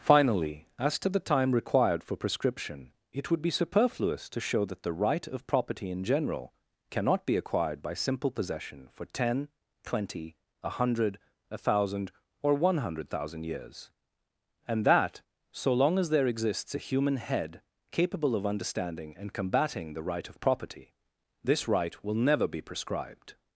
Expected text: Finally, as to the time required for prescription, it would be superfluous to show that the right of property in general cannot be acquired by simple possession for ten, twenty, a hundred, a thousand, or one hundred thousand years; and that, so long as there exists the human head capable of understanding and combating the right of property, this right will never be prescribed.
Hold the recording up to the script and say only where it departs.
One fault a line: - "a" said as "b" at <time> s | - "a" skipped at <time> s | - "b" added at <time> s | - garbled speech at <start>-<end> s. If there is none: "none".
- "the" said as "a" at 16.7 s